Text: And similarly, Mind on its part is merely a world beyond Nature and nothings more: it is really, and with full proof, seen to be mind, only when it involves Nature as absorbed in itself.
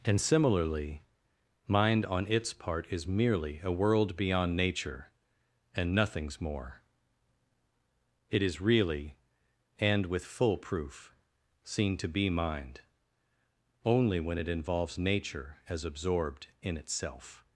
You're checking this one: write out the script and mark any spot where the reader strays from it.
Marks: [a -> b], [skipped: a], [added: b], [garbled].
And similarly, Mind on its part is merely a world beyond Nature and nothings more: it is really, and with full proof, seen to be mind, only when it involves Nature as absorbed in itself.